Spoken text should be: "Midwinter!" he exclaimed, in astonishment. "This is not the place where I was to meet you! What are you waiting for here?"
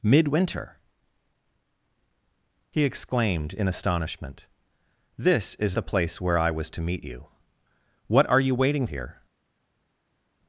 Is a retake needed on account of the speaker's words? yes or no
yes